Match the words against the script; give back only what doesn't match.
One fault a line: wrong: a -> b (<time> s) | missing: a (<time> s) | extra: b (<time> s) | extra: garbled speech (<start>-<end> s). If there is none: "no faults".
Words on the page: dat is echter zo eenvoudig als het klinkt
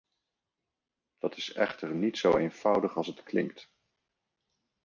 extra: niet (1.9 s)